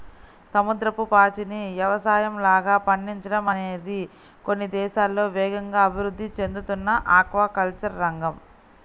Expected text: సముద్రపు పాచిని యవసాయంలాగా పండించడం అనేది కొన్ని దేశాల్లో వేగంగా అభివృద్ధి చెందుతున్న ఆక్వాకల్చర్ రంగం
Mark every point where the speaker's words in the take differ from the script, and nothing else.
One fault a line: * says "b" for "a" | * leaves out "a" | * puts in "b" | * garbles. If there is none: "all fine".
all fine